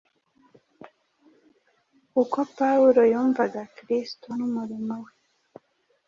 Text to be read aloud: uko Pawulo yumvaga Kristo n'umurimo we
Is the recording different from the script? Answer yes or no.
no